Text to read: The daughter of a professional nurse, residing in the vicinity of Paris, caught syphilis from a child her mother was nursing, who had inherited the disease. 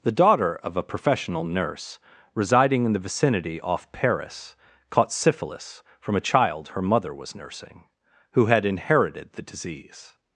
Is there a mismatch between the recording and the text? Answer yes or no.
yes